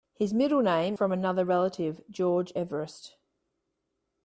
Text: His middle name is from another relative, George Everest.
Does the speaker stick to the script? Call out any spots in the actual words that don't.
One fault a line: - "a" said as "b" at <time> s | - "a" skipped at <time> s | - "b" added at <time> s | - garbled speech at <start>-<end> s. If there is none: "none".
- "is" skipped at 1.0 s